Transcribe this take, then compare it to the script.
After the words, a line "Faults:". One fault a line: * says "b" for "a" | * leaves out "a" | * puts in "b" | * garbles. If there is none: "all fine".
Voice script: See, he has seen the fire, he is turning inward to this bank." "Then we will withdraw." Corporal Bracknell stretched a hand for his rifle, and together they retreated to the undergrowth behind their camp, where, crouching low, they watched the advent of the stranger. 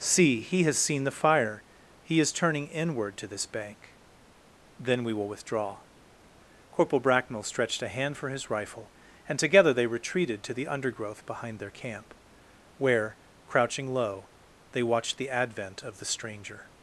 See, he has seen the fire, he is turning inward to this bank." "Then we will withdraw." Corporal Bracknell stretched a hand for his rifle, and together they retreated to the undergrowth behind their camp, where, crouching low, they watched the advent of the stranger.
Faults:
all fine